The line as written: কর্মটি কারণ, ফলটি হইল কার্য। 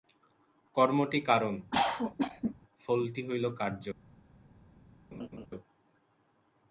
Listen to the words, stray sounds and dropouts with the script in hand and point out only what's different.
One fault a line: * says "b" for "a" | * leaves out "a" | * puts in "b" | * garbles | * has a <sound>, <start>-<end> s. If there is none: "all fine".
* has a cough, 1.7-2.5 s
* has a laugh, 5.1-5.5 s